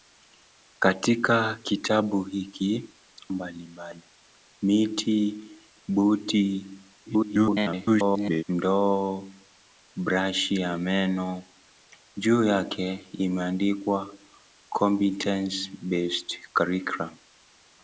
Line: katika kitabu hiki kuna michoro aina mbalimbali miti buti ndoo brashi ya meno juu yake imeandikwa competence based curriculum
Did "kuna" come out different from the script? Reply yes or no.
yes